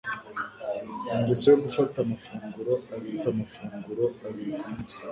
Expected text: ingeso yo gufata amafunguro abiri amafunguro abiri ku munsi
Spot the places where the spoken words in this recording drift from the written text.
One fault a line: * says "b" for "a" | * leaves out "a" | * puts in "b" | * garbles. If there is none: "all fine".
all fine